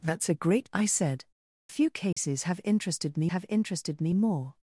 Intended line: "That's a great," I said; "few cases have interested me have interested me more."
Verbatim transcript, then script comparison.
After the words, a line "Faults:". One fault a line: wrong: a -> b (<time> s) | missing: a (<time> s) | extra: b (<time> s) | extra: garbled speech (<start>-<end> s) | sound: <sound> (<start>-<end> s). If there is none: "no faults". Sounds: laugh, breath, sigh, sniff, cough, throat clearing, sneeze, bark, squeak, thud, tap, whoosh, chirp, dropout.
"That's a great," I said; "few cases have interested me have interested me more."
Faults:
sound: dropout (2.1-2.2 s)